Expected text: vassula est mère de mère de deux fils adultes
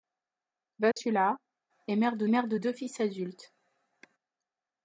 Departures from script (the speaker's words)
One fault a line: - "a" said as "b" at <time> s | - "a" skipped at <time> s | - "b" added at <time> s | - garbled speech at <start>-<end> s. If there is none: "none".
none